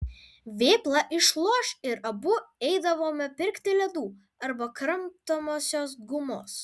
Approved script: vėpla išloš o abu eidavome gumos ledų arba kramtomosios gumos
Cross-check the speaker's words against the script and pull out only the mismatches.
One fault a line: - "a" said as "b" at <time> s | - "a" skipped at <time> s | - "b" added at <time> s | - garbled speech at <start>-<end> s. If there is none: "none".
- "o" said as "ir" at 1.9 s
- "gumos" said as "pirkti" at 3.4 s